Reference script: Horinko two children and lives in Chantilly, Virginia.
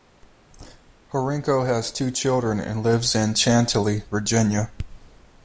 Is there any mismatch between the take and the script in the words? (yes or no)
yes